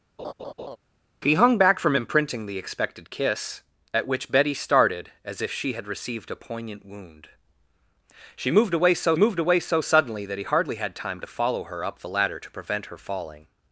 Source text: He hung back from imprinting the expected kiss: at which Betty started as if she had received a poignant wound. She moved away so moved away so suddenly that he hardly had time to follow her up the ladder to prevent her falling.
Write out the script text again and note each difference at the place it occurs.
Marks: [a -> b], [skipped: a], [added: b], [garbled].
He hung back from imprinting the expected kiss: at which Betty started as if she had received a poignant wound. She moved away so moved away so suddenly that he hardly had time to follow her up the ladder to prevent her falling.